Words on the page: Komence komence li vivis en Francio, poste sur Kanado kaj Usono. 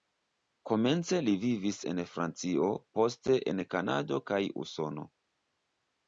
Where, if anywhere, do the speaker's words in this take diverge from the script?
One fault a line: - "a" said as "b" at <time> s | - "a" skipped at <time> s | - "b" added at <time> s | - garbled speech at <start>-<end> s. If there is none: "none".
- "komence" skipped at 1.2 s
- "sur" said as "en" at 3.5 s